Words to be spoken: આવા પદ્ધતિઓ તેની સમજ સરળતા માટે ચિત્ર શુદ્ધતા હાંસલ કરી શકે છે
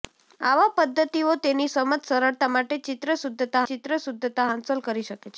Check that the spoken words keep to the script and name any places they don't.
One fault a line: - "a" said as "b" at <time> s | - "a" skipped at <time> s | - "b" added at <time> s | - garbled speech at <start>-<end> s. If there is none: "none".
- "ચિત્ર શુદ્ધતા" added at 3.7 s